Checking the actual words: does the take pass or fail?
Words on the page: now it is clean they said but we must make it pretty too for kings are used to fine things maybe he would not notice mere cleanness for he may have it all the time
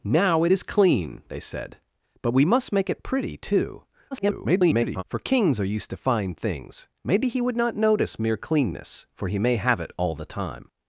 fail